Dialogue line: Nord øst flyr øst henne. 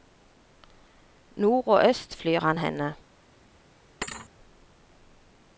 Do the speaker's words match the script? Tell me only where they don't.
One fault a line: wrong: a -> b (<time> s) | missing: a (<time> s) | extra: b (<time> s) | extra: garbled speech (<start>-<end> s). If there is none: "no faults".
extra: og (1.7 s)
wrong: øst -> han (2.4 s)